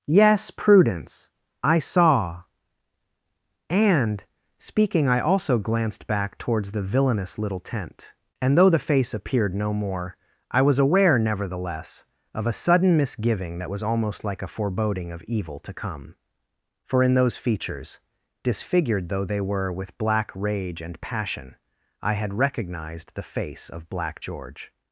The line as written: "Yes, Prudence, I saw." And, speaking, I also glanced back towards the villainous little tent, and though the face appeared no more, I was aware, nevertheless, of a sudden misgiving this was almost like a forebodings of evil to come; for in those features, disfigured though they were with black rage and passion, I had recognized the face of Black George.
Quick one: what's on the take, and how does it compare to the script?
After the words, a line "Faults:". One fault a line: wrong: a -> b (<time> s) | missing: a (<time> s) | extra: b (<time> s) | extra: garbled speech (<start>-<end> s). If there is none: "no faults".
"Yes, Prudence, I saw." And, speaking, I also glanced back towards the villainous little tent, and though the face appeared no more, I was aware, nevertheless, of a sudden misgiving that was almost like a foreboding of evil to come; for in those features, disfigured though they were with black rage and passion, I had recognized the face of Black George.
Faults:
wrong: this -> that (13.6 s)
wrong: forebodings -> foreboding (14.5 s)